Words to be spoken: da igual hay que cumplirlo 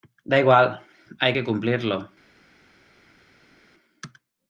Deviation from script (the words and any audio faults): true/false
false